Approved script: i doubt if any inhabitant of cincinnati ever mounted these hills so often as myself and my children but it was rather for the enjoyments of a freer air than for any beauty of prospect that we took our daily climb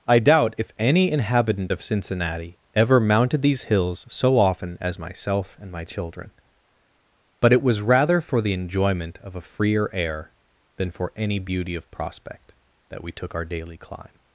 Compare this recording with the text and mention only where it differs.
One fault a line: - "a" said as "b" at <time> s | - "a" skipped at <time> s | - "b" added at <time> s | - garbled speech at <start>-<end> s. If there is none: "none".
- "enjoyments" said as "enjoyment" at 8.5 s